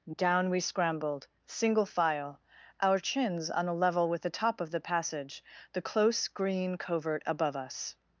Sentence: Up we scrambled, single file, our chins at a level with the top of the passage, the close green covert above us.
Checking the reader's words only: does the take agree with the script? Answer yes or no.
no